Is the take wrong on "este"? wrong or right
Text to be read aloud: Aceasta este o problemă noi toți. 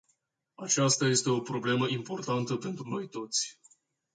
right